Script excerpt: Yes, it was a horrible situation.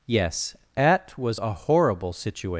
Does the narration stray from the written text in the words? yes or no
yes